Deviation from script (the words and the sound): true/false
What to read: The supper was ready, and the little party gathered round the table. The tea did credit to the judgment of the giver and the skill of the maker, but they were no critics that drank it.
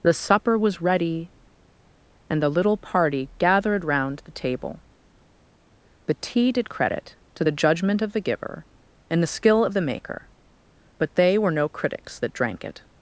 false